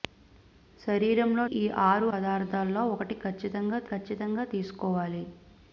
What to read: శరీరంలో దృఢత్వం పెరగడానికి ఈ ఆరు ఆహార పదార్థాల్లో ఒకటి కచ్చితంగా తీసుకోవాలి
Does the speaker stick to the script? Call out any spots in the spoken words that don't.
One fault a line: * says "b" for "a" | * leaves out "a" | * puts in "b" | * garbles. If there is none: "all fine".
* leaves out "దృఢత్వం పెరగడానికి"
* leaves out "ఆహార"
* puts in "కచ్చితంగా"